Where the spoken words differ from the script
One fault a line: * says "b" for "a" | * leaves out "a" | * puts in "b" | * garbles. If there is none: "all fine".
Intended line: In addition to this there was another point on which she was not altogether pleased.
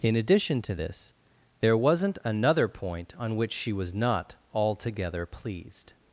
* says "wasn't" for "was"